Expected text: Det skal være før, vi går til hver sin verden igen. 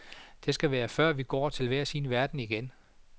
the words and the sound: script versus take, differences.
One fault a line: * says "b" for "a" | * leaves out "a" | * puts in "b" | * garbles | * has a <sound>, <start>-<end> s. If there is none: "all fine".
all fine